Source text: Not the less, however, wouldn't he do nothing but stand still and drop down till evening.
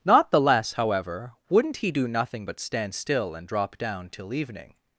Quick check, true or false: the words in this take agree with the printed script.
true